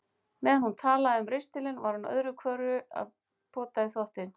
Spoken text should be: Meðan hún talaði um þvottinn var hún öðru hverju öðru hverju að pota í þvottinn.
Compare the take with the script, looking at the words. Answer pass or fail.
fail